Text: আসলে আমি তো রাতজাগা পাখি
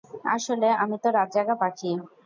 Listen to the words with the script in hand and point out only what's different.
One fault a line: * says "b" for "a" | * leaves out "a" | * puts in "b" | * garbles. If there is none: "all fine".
all fine